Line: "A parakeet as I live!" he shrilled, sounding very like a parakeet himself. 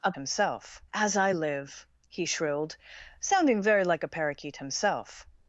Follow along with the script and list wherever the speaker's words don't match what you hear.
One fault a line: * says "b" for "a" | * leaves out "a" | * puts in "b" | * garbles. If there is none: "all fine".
* says "himself" for "parakeet"